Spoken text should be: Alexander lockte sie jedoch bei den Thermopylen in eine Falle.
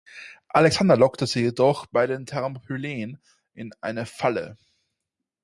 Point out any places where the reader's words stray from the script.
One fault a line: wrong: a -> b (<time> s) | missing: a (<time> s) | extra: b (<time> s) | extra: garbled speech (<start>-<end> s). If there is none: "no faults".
no faults